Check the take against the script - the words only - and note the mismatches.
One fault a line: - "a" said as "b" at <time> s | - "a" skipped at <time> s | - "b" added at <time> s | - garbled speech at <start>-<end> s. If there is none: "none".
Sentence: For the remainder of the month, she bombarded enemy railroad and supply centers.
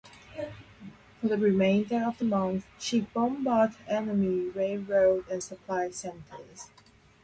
none